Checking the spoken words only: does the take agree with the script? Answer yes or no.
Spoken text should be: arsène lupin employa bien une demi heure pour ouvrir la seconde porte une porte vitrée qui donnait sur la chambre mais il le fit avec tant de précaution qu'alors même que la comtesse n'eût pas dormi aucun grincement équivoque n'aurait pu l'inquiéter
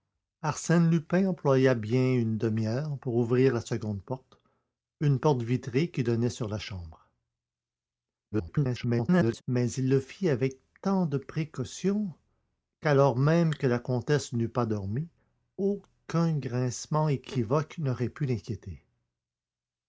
no